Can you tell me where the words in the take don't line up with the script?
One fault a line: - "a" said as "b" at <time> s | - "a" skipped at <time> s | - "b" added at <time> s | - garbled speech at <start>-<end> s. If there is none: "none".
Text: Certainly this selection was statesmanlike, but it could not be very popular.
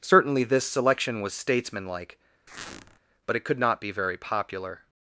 none